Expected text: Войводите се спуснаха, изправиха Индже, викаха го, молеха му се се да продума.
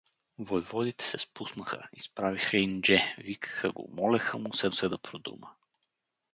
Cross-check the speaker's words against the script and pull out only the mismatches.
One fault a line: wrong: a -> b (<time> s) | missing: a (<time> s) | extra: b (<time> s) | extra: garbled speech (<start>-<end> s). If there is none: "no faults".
no faults